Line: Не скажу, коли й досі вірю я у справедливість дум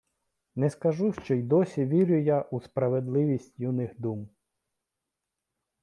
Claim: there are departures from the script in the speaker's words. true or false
true